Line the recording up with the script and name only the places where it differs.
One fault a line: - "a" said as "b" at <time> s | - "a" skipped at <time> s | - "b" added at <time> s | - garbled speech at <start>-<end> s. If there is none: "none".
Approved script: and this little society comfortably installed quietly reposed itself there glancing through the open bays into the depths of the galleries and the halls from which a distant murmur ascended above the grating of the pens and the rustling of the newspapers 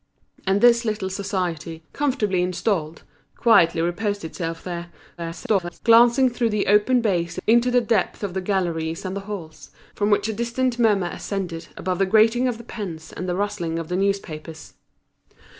- garbled speech at 5.2-5.8 s